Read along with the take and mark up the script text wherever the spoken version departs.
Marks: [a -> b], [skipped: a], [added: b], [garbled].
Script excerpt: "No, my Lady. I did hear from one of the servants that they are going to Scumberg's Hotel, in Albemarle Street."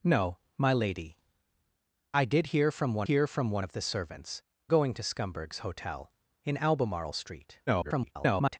"No, my Lady. I did hear from one [added: hear from one] of the servants [skipped: that they are] going to Scumberg's Hotel, in Albemarle Street." [garbled]